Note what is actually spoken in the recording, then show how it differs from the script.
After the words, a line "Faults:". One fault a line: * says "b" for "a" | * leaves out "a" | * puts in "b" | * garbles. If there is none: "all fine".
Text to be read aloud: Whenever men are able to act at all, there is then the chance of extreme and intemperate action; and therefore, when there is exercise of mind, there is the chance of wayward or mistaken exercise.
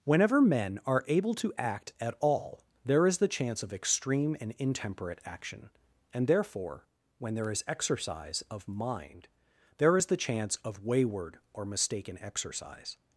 Whenever men are able to act at all, there is the chance of extreme and intemperate action; and therefore, when there is exercise of mind, there is the chance of wayward or mistaken exercise.
Faults:
* leaves out "then"